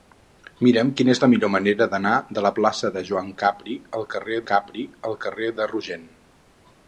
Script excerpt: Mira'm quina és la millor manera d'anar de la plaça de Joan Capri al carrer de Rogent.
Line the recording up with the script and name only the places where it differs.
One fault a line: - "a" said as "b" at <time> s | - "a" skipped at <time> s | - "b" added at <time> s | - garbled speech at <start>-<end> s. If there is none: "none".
- "Capri al carrer" added at 4.5 s